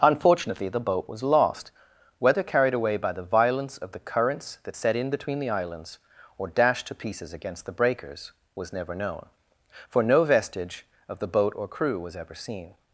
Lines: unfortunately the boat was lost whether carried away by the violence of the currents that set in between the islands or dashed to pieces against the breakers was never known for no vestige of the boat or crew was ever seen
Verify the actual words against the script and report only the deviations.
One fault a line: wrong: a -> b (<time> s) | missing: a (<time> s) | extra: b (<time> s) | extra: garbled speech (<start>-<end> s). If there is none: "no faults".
no faults